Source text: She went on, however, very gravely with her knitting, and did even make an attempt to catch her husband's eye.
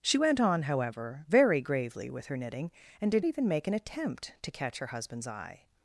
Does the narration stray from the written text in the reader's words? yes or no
no